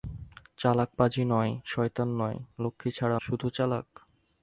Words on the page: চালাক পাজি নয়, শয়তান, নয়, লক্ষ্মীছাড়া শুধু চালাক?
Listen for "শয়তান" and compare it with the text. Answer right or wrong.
right